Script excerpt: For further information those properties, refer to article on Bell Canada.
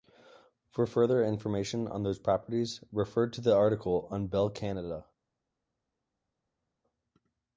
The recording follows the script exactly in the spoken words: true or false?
false